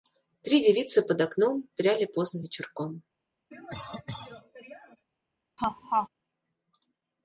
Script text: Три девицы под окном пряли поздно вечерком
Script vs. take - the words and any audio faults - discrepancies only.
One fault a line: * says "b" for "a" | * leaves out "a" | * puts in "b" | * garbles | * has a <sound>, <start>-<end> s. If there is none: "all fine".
* has a cough, 3.5-5.1 s
* has a laugh, 5.6-6.1 s